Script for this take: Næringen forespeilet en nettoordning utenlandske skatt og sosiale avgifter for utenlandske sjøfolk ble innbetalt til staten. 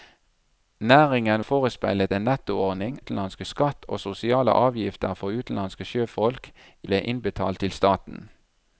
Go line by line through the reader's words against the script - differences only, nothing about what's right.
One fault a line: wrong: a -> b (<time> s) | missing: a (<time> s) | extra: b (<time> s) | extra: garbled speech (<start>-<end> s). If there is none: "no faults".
no faults